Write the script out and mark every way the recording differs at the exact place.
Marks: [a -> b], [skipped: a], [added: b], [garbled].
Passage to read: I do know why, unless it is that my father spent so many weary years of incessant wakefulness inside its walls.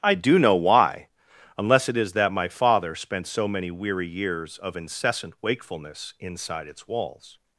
I do know why, unless it is that my father spent so many weary years of incessant wakefulness inside its walls.